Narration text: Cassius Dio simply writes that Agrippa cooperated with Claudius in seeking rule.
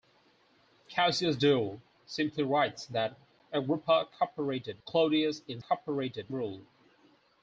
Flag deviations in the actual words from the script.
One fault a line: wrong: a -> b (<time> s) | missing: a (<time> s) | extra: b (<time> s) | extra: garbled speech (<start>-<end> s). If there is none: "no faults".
missing: with (4.8 s)
wrong: seeking -> cooperated (5.6 s)